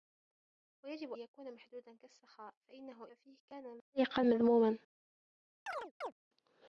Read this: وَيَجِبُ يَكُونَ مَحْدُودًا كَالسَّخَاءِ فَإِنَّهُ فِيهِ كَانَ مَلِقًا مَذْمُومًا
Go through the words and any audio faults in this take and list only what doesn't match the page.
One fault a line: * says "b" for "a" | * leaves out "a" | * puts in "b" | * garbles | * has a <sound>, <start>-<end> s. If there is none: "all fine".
* has a chirp, 5.7-6.1 s